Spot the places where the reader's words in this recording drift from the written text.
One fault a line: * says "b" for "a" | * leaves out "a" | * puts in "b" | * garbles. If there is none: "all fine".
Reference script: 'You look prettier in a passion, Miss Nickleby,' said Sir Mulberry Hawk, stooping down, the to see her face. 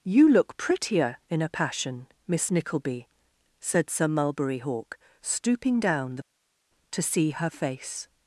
all fine